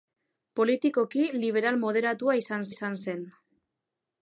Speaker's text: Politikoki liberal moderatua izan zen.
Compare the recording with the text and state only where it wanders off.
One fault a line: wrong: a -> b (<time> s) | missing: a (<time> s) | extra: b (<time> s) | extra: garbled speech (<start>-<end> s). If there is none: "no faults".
extra: izan (2.7 s)